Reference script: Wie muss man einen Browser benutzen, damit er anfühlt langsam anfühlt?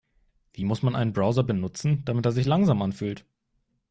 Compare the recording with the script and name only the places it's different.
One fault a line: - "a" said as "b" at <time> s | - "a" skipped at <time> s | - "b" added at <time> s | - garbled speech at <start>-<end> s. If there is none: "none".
- "anfühlt" said as "sich" at 2.3 s